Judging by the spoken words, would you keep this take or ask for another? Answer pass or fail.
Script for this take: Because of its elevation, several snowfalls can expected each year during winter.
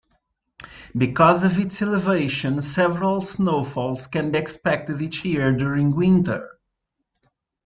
pass